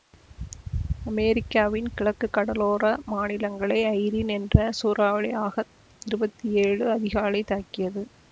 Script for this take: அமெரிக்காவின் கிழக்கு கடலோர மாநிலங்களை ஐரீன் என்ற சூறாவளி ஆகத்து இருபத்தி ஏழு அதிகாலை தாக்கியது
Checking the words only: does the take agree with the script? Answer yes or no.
yes